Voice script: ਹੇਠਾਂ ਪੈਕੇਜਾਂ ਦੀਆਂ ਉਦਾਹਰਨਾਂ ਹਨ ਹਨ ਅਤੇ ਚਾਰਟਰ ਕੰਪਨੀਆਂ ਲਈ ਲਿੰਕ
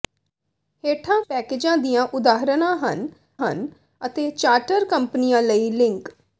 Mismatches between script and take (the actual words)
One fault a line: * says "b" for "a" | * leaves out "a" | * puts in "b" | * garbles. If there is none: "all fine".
all fine